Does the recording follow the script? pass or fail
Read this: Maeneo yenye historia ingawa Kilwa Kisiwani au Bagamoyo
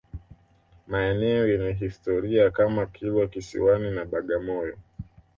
fail